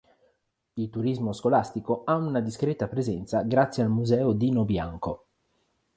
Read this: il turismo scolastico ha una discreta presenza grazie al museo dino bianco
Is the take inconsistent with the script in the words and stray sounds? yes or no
no